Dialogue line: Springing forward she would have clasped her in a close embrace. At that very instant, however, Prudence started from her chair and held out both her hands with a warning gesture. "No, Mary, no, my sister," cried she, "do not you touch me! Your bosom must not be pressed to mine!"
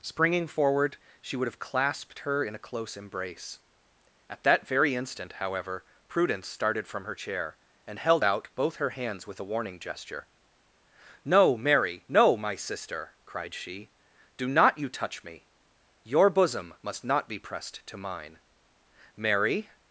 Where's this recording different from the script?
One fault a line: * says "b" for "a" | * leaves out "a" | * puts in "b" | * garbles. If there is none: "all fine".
* puts in "Mary"